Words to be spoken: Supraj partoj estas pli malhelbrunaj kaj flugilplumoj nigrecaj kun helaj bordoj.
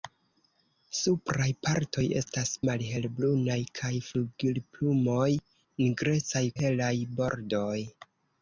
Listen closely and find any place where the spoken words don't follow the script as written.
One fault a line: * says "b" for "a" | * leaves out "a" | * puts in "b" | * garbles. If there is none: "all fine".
* leaves out "pli"
* leaves out "kun"